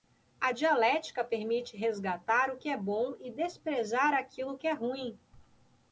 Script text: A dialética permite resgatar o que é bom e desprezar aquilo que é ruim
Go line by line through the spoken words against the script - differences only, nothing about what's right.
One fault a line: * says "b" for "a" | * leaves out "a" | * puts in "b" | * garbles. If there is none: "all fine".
all fine